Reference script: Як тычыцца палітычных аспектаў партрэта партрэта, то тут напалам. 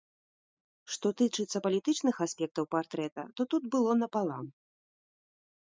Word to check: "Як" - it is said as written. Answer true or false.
false